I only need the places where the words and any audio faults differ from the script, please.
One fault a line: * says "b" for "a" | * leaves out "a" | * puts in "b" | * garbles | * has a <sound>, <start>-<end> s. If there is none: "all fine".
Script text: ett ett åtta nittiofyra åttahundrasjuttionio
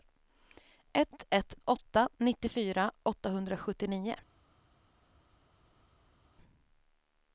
all fine